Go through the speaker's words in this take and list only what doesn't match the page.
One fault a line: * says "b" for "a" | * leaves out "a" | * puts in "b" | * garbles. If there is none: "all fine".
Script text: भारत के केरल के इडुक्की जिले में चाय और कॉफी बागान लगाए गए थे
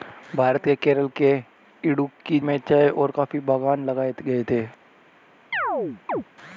* leaves out "जिले"